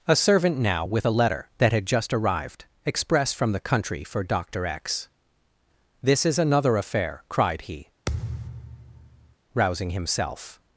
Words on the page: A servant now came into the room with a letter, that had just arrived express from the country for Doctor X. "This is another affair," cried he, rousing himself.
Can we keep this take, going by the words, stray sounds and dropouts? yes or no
no